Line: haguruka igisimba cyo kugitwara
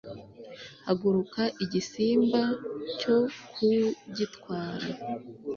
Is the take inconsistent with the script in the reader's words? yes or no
no